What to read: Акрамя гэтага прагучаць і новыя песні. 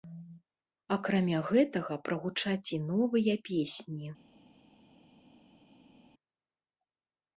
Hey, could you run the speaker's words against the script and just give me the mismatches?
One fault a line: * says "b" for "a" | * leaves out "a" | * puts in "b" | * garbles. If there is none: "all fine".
all fine